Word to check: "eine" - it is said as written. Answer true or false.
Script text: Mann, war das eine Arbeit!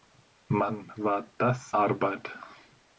false